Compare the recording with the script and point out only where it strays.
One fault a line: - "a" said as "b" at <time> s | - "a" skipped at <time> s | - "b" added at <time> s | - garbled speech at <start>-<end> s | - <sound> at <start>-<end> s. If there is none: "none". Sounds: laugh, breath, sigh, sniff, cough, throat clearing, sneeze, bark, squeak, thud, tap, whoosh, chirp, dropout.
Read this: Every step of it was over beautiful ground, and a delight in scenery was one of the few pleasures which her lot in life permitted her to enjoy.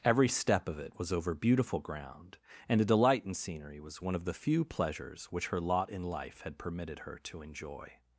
- "had" added at 6.4 s